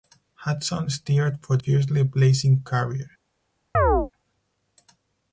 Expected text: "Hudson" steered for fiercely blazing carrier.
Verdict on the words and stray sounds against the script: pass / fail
fail